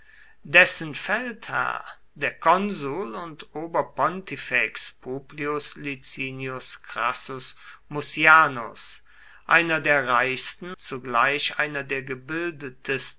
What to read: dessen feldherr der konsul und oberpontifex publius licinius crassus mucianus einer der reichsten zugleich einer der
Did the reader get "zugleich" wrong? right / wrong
right